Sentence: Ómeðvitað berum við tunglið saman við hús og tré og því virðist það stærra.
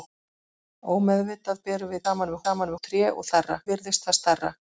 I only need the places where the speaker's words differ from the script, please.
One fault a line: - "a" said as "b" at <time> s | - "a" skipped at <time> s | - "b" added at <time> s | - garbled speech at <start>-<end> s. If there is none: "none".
- "tunglið" skipped at 2.0 s
- "hús" said as "saman" at 2.4 s
- "því" said as "stærra" at 3.3 s